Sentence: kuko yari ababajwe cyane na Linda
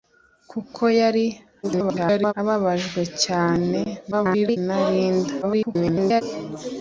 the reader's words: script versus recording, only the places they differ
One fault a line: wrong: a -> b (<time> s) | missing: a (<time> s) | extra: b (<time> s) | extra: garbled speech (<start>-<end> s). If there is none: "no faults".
extra: garbled speech (1.6-2.3 s)
extra: garbled speech (4.1-4.6 s)
extra: garbled speech (5.4-6.2 s)